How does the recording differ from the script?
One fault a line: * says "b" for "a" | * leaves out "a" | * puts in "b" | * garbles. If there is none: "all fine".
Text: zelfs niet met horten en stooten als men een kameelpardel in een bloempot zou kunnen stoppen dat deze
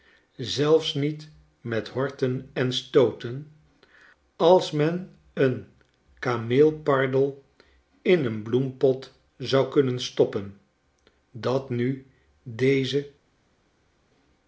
* puts in "nu"